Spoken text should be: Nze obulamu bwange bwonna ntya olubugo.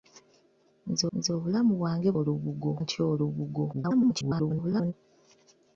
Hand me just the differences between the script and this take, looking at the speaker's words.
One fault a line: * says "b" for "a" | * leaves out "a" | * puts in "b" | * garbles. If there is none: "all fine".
* puts in "nze"
* says "olubugo" for "bwonna"
* garbles